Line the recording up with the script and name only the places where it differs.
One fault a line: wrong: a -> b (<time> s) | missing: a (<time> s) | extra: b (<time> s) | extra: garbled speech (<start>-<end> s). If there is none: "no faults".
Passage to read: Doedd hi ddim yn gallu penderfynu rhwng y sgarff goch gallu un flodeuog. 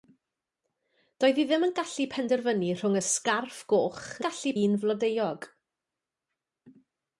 no faults